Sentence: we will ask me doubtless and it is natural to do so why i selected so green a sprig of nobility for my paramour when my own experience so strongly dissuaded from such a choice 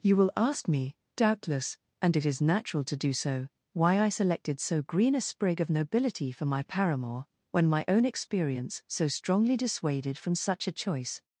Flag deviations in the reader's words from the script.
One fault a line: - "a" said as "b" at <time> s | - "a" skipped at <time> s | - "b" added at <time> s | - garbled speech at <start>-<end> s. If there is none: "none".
- "we" said as "you" at 0.0 s